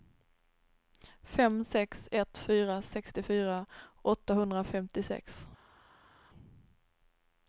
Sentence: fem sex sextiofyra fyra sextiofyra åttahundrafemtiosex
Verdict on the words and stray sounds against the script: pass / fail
fail